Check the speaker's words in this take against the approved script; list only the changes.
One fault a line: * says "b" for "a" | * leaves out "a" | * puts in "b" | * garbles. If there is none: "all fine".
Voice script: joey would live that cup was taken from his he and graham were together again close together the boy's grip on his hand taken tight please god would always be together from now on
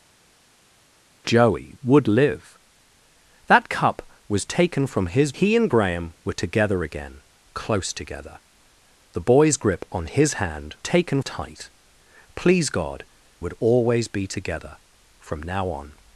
all fine